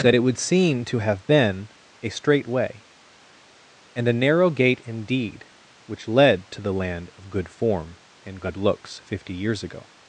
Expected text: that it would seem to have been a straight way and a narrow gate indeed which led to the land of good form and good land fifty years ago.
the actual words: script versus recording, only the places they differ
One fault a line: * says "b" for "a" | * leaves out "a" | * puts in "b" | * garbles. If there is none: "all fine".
* says "looks" for "land"